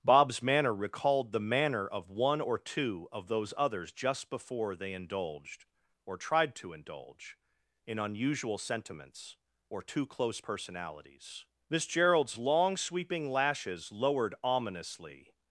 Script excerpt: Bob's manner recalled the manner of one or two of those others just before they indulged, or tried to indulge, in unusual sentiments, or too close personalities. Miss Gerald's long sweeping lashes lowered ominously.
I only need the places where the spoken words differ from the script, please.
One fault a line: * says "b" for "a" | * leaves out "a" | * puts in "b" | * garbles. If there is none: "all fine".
all fine